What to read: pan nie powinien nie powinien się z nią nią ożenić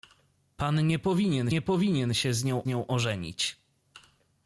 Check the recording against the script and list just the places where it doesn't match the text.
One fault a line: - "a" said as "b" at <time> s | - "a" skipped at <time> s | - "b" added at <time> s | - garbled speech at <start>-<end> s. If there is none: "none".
none